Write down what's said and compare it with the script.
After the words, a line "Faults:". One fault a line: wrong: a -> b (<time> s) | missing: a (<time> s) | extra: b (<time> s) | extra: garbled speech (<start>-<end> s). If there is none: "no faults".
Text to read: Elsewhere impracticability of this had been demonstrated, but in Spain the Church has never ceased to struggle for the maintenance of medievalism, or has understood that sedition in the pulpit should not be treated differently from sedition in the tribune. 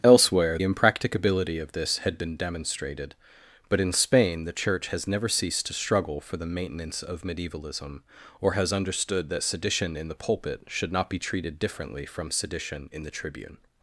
Elsewhere impracticability of this had been demonstrated, but in Spain the Church has never ceased to struggle for the maintenance of medievalism, or has understood that sedition in the pulpit should not be treated differently from sedition in the tribune.
Faults:
no faults